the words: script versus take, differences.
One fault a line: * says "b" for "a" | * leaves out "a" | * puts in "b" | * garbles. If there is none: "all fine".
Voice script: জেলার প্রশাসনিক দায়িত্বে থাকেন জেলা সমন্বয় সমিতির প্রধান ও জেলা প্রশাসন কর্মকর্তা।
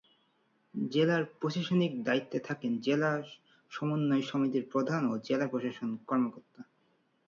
all fine